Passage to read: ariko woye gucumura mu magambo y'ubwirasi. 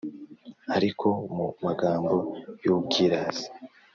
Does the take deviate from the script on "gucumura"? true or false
true